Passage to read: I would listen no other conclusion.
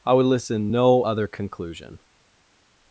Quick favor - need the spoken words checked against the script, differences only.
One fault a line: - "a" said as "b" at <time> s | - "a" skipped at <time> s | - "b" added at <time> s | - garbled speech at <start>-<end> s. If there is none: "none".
none